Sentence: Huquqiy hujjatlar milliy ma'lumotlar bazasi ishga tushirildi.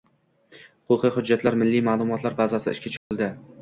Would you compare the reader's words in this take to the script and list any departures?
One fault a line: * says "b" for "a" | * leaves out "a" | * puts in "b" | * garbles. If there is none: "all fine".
all fine